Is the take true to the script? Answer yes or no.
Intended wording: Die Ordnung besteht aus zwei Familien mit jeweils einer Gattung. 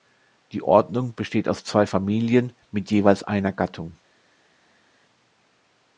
yes